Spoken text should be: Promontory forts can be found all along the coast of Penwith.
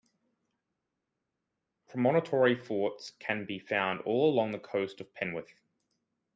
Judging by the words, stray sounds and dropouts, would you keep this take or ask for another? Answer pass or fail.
pass